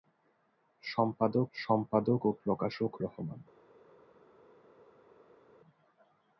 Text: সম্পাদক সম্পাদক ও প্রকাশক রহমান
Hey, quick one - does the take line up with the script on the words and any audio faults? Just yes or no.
yes